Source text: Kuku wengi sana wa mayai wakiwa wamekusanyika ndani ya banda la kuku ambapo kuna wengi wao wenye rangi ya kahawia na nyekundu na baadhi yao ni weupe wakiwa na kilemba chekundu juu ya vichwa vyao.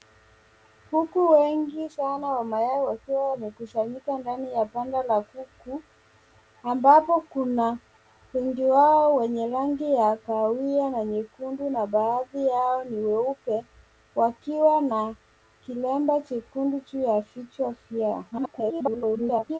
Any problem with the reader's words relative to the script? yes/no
yes